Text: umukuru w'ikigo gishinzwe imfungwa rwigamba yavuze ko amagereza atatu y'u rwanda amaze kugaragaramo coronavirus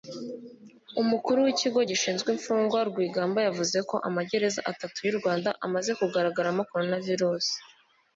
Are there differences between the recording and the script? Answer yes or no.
no